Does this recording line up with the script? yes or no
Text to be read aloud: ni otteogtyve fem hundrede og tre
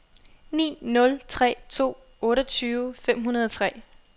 no